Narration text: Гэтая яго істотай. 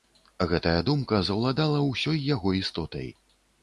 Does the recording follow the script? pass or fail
fail